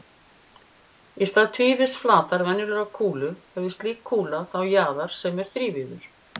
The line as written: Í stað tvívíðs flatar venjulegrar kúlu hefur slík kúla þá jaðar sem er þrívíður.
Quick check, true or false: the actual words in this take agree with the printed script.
true